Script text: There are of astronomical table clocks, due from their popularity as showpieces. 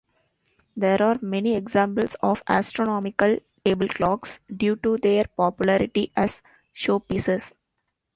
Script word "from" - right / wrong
wrong